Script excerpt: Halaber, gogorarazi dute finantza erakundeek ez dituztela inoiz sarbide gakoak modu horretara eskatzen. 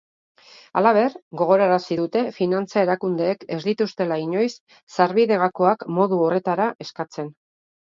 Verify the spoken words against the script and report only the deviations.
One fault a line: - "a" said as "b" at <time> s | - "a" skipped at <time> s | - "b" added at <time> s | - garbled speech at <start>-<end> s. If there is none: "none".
none